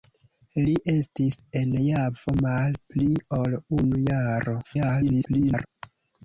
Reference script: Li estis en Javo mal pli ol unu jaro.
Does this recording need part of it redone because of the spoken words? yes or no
yes